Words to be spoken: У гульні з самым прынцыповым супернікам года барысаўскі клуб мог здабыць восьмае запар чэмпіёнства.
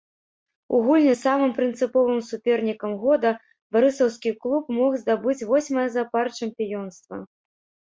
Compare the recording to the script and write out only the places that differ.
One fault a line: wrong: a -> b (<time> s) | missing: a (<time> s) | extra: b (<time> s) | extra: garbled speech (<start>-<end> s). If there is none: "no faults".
no faults